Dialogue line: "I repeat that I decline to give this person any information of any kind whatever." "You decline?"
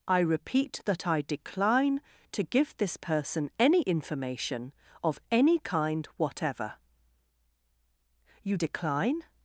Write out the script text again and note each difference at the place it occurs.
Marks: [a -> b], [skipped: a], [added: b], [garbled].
"I repeat that I decline to give this person any information of any kind whatever." "You decline?"